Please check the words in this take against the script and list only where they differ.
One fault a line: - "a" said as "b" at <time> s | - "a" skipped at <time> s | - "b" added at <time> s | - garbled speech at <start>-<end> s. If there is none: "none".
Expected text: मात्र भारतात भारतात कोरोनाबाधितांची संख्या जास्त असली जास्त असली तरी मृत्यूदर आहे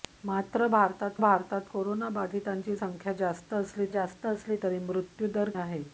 none